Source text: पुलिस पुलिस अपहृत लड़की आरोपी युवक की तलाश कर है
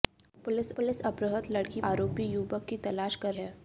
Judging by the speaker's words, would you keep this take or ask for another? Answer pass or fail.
pass